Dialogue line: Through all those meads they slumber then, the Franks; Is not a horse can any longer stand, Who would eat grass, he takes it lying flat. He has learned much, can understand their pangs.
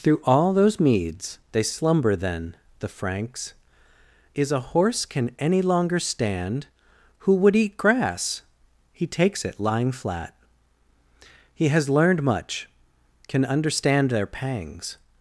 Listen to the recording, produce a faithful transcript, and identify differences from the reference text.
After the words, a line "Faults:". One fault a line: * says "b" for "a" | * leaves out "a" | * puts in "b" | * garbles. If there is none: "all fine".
Through all those meads they slumber then, the Franks; Is a horse can any longer stand, Who would eat grass, he takes it lying flat. He has learned much, can understand their pangs.
Faults:
* leaves out "not"